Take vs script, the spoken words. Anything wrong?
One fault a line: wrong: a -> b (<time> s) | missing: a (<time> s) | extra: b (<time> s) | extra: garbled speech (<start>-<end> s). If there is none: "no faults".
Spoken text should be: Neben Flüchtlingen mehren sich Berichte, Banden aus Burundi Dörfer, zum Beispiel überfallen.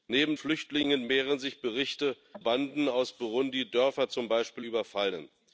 no faults